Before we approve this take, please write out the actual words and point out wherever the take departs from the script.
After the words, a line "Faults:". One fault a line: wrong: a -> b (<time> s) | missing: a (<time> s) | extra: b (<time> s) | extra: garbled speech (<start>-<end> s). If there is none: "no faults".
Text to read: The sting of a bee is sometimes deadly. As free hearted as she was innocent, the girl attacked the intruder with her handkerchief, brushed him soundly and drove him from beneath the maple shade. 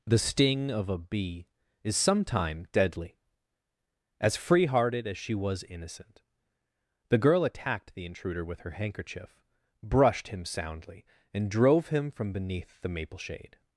The sting of a bee is sometime deadly. As free hearted as she was innocent, the girl attacked the intruder with her handkerchief, brushed him soundly and drove him from beneath the maple shade.
Faults:
wrong: sometimes -> sometime (1.9 s)